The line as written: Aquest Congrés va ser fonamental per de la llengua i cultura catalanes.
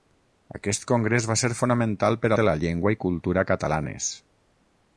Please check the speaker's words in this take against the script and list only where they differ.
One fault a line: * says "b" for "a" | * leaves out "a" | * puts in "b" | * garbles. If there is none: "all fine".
all fine